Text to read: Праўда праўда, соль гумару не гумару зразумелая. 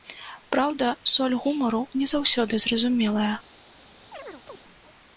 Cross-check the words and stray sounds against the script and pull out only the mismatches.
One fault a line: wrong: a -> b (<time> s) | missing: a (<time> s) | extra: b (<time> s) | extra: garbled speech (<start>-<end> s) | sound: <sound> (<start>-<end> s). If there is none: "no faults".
missing: праўда (0.9 s)
wrong: гумару -> заўсёды (2.1 s)
sound: chirp (4.1-4.6 s)